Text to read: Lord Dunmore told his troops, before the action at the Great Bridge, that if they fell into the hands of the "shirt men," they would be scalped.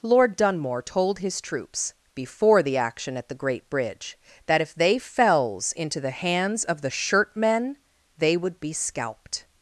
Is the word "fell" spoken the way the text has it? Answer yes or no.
no